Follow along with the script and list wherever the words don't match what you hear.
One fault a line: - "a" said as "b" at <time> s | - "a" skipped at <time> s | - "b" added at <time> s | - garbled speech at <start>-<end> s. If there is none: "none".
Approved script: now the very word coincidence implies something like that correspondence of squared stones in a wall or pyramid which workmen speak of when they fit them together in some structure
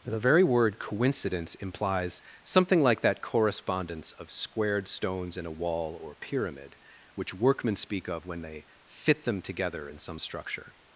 - "now" skipped at 0.1 s